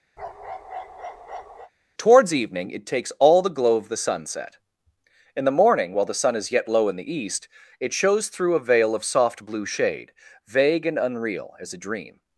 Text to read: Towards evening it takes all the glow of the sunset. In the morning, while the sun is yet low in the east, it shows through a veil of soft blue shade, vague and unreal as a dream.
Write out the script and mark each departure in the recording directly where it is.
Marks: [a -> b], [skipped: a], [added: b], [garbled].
Towards evening it takes all the glow of the sunset. In the morning, while the sun is yet low in the east, it shows through a veil of soft blue shade, vague and unreal as a dream.